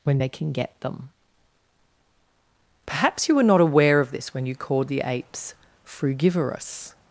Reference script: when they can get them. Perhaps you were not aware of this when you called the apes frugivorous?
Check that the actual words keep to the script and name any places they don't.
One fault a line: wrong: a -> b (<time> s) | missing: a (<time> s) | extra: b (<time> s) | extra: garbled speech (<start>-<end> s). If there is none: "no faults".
no faults